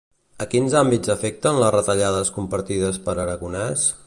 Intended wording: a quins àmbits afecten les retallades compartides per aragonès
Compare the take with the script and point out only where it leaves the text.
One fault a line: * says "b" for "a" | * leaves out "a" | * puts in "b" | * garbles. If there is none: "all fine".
all fine